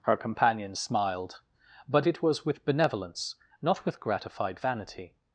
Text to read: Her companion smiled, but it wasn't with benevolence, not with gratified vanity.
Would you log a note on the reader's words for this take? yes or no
yes